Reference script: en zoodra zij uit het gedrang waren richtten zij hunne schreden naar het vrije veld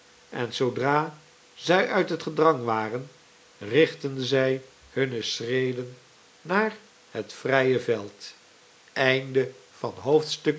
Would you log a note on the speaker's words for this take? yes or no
no